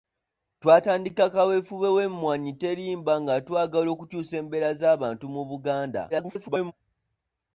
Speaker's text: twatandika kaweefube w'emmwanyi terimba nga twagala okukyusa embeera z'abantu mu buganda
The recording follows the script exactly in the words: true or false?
false